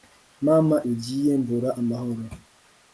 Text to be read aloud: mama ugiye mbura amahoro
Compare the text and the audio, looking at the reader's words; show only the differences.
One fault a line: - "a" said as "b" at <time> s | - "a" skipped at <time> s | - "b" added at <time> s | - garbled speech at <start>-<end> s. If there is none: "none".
none